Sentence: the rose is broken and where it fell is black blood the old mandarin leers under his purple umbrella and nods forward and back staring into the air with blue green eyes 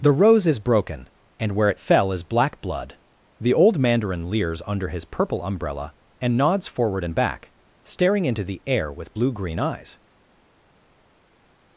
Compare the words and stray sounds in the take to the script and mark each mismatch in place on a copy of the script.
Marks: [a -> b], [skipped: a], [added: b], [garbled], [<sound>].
the rose is broken and where it fell is black blood the old mandarin leers under his purple umbrella and nods forward and back staring into the air with blue green eyes